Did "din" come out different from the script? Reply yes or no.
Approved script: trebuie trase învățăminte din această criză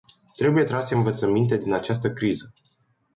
no